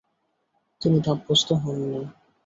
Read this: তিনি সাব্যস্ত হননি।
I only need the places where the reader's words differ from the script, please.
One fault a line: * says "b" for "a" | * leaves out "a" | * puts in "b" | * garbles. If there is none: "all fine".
all fine